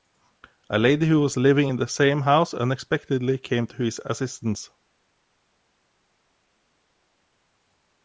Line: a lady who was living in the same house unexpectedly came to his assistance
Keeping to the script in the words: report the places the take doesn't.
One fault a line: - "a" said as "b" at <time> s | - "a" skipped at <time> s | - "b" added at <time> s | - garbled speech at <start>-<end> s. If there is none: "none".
none